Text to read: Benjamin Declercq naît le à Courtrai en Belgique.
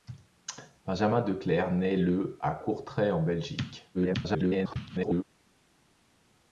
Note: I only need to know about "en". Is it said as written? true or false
true